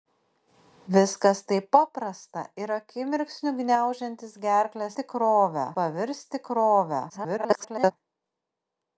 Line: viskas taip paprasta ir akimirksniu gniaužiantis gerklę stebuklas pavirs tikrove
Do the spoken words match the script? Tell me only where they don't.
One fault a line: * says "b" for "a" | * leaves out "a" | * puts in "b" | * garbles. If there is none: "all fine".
* says "tikrove" for "stebuklas"
* garbles